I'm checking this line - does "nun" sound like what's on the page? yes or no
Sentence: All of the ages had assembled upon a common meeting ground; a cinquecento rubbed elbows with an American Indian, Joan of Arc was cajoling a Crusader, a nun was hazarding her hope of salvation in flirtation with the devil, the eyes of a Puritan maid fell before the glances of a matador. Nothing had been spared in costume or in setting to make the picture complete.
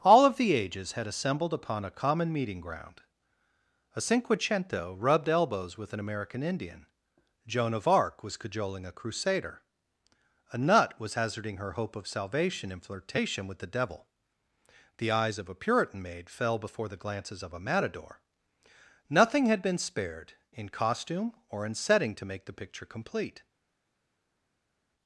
no